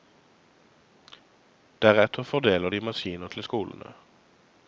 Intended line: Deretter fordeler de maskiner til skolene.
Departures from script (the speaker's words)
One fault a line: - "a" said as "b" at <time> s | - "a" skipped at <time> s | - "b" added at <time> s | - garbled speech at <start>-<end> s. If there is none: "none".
none